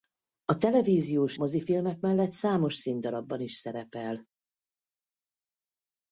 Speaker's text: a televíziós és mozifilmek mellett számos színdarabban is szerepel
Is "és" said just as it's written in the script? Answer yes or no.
no